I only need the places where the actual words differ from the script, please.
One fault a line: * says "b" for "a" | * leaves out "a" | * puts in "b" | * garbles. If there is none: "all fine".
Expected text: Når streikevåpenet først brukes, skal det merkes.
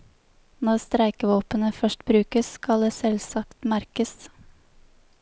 * puts in "selvsagt"